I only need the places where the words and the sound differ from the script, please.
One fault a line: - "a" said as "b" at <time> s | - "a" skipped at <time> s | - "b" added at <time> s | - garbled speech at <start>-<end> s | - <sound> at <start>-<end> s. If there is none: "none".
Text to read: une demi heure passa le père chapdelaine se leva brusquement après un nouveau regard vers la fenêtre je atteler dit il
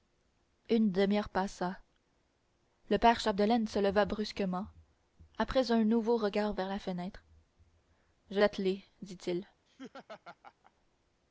- laugh at 9.7-10.7 s